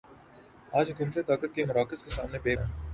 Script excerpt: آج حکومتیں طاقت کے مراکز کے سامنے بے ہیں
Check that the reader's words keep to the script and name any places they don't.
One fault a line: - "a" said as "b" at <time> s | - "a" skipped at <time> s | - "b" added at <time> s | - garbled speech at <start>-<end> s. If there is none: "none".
none